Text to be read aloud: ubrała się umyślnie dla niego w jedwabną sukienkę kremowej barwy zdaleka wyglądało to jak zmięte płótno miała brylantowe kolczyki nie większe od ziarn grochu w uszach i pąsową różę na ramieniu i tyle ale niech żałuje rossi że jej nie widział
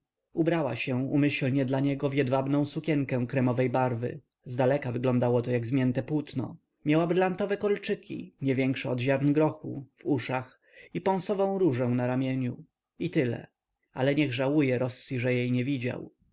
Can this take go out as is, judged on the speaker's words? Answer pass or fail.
pass